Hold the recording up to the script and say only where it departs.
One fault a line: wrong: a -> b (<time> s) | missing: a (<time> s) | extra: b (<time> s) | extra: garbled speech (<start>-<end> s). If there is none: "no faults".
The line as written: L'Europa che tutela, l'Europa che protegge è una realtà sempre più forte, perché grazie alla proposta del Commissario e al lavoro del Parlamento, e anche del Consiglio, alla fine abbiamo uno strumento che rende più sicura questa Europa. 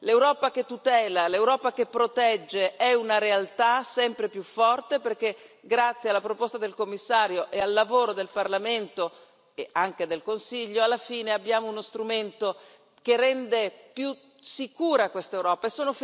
no faults